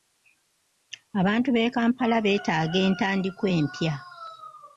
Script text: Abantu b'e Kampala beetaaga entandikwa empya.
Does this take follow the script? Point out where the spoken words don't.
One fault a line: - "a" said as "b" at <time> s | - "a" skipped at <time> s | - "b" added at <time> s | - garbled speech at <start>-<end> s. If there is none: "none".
none